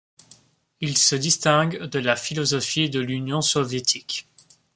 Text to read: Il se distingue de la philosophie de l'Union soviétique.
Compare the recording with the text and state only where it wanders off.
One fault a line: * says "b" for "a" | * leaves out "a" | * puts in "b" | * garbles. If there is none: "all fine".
all fine